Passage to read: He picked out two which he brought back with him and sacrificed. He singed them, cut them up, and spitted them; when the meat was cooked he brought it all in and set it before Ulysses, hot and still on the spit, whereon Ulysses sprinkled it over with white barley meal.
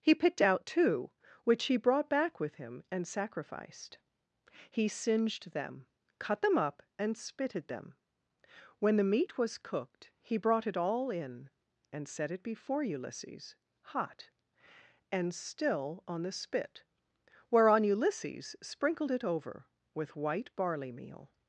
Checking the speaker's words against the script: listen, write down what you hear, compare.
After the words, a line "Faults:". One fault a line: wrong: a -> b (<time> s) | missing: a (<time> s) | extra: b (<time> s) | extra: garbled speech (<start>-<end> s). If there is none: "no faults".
He picked out two which he brought back with him and sacrificed. He singed them, cut them up, and spitted them; when the meat was cooked he brought it all in and set it before Ulysses, hot and still on the spit, whereon Ulysses sprinkled it over with white barley meal.
Faults:
no faults